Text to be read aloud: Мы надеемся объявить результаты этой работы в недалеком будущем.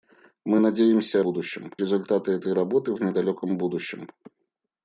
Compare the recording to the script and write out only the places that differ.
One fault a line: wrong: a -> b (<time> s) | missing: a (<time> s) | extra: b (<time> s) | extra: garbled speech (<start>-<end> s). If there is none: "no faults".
wrong: объявить -> будущем (1.2 s)